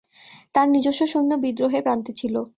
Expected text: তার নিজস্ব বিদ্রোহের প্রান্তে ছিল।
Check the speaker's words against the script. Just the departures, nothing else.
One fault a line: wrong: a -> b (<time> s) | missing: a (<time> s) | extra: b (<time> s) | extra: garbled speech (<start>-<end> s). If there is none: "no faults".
extra: সৈন্য (1.1 s)